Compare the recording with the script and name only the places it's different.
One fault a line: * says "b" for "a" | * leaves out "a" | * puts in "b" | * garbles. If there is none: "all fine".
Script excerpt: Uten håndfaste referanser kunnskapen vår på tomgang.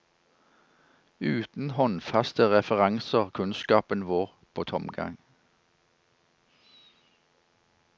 all fine